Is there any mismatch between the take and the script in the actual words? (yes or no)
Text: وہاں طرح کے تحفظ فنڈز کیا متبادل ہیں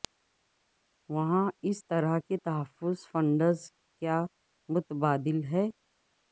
yes